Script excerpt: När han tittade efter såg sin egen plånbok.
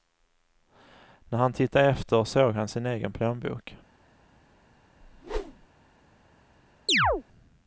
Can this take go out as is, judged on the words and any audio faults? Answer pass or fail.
fail